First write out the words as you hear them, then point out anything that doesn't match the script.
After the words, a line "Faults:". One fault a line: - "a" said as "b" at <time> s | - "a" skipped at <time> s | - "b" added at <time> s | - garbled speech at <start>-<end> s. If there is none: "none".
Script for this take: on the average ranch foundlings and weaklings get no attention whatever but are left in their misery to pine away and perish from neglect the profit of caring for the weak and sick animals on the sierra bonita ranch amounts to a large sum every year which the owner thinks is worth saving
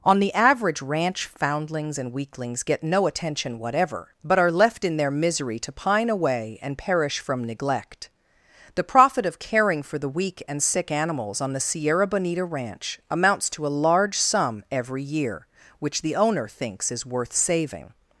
on the average ranch foundlings and weaklings get no attention whatever but are left in their misery to pine away and perish from neglect the profit of caring for the weak and sick animals on the sierra bonita ranch amounts to a large sum every year which the owner thinks is worth saving
Faults:
none